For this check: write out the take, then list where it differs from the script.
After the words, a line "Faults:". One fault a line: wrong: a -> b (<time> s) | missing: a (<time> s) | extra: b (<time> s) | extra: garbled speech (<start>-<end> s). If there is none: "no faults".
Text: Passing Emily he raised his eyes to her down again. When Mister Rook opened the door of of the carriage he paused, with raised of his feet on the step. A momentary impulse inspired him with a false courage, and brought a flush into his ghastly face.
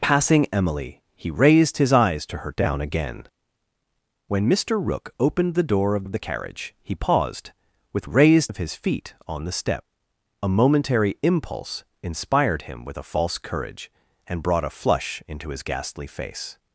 Passing Emily he raised his eyes to her down again. When Mister Rook opened the door of of the carriage he paused, with raised of his feet on the step. A momentary impulse inspired him with a false courage, and brought a flush into his ghastly face.
Faults:
no faults